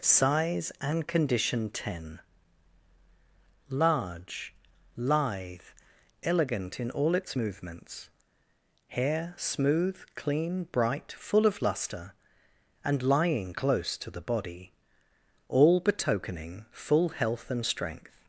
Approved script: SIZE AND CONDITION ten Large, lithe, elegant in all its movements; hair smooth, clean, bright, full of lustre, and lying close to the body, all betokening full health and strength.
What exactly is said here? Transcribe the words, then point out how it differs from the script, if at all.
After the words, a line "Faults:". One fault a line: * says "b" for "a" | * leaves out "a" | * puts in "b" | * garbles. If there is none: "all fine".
SIZE AND CONDITION ten Large, lithe, elegant in all its movements; hair smooth, clean, bright, full of lustre, and lying close to the body, all betokening full health and strength.
Faults:
all fine